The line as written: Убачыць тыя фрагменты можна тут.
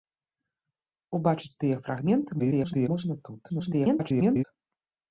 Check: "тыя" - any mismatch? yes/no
no